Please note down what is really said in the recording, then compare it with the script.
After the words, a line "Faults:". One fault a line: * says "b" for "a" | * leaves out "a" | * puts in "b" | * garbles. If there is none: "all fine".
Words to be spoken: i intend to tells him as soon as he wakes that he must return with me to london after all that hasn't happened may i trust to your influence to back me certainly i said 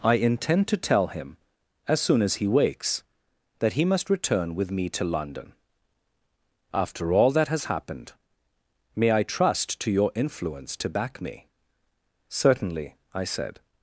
i intend to tell him as soon as he wakes that he must return with me to london after all that has happened may i trust to your influence to back me certainly i said
Faults:
* says "tell" for "tells"
* says "has" for "hasn't"